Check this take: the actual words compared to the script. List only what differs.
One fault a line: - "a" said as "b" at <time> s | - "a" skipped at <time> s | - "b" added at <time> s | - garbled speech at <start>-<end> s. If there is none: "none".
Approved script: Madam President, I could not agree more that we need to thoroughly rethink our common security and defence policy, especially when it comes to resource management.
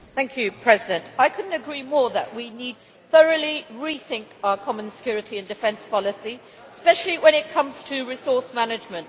none